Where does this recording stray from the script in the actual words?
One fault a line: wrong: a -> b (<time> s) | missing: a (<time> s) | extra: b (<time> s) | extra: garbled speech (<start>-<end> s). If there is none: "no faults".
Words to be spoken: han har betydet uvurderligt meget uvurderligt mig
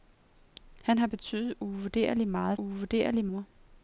no faults